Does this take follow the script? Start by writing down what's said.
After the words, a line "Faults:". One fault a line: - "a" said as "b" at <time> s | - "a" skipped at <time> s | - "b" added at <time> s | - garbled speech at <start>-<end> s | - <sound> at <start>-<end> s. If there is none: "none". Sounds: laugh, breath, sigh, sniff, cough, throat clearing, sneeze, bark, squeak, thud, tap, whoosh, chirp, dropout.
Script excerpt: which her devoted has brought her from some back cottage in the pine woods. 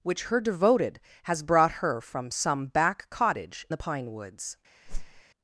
which her devoted has brought her from some back cottage the pine woods.
Faults:
- "in" skipped at 3.6 s
- whoosh at 4.9-5.2 s